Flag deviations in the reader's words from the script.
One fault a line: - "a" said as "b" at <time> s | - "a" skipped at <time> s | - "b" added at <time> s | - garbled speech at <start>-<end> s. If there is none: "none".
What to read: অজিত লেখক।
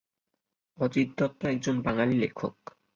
- "দত্ত একজন বাঙালি" added at 1.2 s